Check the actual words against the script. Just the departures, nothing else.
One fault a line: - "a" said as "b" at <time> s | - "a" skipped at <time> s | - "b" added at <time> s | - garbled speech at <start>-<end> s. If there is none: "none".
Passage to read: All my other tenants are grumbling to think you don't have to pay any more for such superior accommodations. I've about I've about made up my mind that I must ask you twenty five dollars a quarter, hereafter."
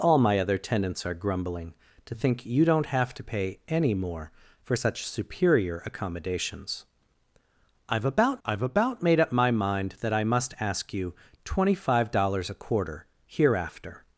none